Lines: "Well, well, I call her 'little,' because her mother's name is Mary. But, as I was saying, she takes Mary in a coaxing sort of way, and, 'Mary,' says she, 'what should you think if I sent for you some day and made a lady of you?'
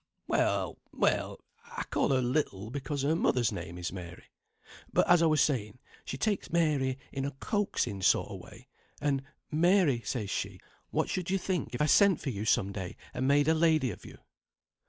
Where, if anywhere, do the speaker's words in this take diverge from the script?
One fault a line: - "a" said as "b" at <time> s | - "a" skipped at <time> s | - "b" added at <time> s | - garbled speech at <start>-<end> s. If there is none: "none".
none